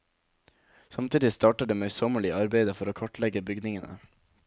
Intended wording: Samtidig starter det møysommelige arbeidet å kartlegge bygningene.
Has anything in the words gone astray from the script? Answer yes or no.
yes